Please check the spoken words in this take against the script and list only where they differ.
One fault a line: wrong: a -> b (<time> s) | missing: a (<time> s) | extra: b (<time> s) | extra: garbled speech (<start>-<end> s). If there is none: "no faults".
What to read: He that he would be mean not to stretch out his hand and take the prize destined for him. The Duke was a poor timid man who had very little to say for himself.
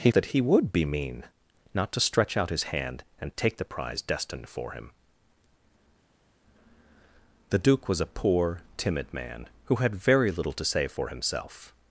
no faults